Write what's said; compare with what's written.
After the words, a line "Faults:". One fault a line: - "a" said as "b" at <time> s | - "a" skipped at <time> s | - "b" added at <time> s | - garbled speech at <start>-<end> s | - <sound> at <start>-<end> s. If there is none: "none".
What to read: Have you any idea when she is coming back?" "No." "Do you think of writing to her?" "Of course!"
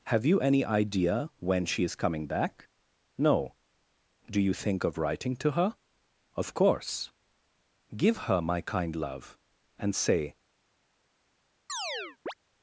Have you any idea when she is coming back?" "No." "Do you think of writing to her?" "Of course!" "Give her my kind love; and say
Faults:
- "Give her my kind love and say" added at 7.9 s
- chirp at 11.7-12.3 s